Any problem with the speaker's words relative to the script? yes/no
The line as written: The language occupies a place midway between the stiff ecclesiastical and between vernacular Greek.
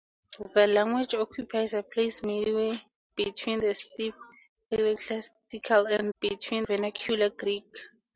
no